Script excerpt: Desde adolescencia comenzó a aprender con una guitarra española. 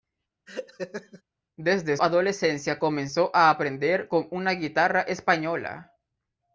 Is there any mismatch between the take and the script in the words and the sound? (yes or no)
yes